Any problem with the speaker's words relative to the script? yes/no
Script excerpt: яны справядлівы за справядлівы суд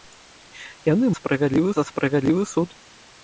no